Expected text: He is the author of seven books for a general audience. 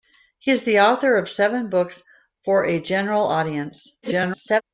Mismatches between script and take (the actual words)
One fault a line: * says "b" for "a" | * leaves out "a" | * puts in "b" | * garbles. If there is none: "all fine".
* garbles